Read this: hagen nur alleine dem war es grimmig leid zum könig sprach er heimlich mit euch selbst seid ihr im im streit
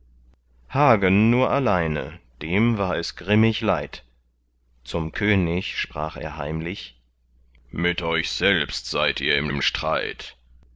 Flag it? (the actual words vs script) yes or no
no